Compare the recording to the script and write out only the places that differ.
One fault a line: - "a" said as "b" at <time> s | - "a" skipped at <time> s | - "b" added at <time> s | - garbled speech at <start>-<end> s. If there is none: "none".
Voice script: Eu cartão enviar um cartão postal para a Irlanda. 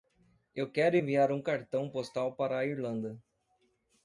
- "cartão" said as "quero" at 0.7 s